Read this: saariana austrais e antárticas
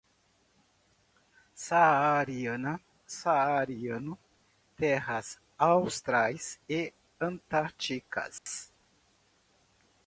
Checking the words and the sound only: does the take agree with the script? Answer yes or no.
no